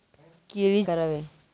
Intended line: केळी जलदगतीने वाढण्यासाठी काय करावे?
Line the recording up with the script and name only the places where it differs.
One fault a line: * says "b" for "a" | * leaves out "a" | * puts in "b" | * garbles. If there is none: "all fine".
* leaves out "जलदगतीने वाढण्यासाठी काय"